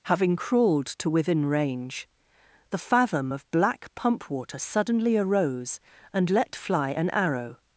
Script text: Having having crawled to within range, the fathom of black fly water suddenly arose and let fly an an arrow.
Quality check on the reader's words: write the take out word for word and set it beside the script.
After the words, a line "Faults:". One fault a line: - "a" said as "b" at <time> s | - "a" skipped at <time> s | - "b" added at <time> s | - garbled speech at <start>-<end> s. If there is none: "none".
Having crawled to within range, the fathom of black pump water suddenly arose and let fly an arrow.
Faults:
- "having" skipped at 0.3 s
- "fly" said as "pump" at 4.0 s
- "an" skipped at 7.1 s